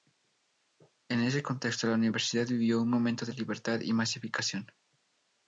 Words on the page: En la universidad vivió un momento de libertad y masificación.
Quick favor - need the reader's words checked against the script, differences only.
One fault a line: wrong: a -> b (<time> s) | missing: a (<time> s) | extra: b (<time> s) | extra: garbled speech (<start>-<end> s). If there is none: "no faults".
extra: ese contexto (1.2 s)